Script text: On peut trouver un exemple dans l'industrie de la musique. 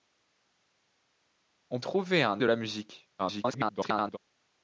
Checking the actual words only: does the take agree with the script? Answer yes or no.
no